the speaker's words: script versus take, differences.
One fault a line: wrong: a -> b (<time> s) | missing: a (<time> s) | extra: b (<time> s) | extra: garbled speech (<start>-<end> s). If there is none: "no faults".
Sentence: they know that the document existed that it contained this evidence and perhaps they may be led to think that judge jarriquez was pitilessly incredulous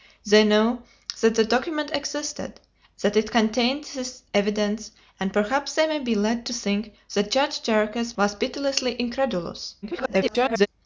extra: garbled speech (9.8-10.7 s)